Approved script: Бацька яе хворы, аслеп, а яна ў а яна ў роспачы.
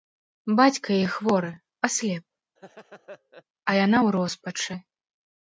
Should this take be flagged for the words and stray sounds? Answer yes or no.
yes